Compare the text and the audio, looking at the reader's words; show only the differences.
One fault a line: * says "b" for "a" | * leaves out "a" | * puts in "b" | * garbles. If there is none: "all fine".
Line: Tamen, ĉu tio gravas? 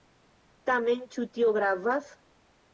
all fine